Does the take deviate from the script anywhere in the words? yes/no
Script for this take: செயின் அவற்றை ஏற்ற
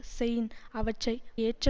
no